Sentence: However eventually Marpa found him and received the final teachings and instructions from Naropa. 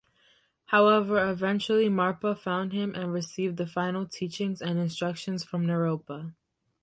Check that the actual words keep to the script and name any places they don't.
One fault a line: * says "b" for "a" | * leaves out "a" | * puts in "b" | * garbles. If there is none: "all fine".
all fine